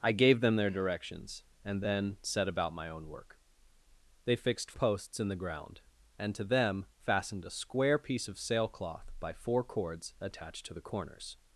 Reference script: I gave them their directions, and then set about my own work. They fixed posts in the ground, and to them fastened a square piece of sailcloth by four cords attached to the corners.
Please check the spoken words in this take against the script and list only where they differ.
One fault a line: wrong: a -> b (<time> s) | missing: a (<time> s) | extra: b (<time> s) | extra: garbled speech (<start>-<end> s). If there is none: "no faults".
no faults